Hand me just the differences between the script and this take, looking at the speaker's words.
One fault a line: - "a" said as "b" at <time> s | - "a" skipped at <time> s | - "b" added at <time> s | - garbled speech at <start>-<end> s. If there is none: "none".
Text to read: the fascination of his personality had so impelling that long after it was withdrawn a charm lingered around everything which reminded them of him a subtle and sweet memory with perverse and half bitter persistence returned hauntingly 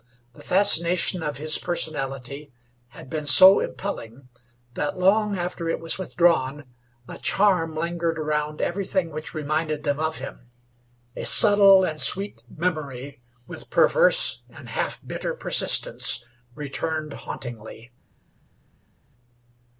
- "been" added at 3.1 s